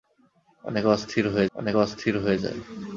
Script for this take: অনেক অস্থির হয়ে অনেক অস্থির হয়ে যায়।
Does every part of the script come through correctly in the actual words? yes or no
yes